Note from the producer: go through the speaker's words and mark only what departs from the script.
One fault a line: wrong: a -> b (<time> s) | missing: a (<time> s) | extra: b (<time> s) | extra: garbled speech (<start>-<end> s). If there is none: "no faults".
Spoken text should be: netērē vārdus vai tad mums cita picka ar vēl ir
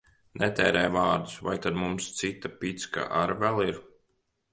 no faults